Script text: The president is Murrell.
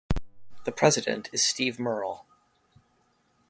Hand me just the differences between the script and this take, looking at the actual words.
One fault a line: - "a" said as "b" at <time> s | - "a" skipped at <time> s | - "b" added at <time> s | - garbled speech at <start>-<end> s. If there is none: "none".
- "Steve" added at 1.4 s